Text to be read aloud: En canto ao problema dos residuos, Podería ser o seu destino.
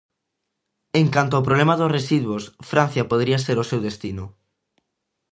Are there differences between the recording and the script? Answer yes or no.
yes